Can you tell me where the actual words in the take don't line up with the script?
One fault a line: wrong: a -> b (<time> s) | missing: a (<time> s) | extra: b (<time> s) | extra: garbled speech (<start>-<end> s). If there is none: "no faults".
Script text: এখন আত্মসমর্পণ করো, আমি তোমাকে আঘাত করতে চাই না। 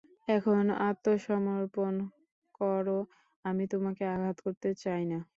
no faults